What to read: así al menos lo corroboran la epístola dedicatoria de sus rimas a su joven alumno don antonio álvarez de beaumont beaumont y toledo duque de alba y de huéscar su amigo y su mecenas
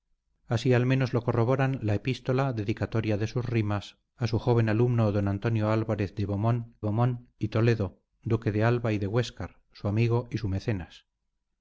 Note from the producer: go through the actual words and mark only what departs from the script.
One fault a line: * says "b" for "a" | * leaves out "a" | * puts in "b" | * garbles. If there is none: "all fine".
all fine